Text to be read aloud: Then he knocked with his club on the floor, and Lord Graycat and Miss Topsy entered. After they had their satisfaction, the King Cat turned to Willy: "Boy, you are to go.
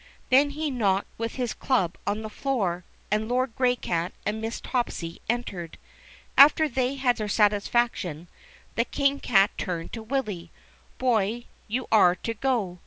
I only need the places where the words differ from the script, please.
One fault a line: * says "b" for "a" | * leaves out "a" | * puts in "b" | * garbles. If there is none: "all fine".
all fine